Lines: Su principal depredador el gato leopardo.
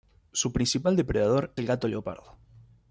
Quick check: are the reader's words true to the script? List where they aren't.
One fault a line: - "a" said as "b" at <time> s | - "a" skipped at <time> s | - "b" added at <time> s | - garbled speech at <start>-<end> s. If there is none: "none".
none